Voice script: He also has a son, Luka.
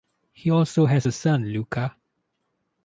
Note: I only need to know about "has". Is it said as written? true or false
true